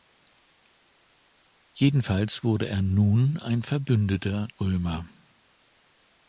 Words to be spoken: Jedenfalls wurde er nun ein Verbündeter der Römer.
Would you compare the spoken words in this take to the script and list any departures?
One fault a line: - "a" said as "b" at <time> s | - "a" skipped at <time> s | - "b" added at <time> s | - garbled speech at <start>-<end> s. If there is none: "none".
- "der" skipped at 4.5 s